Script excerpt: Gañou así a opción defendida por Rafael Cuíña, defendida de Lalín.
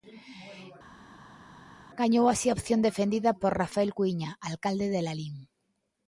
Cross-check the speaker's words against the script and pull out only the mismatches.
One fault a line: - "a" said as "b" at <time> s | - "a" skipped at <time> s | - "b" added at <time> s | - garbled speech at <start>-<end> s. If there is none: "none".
- "defendida" said as "alcalde" at 4.5 s